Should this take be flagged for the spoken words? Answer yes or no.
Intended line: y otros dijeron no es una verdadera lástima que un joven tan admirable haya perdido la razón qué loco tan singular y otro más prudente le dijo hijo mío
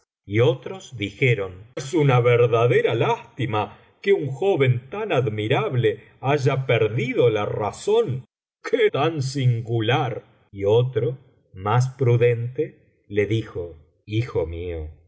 yes